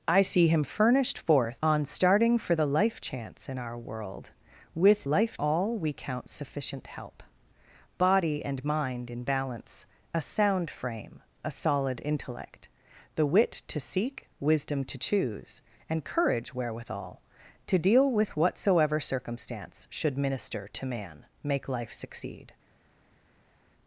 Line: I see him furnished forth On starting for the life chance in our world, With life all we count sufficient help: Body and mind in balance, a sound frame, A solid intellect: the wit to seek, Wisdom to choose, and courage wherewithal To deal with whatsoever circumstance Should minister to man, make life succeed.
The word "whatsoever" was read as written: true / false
true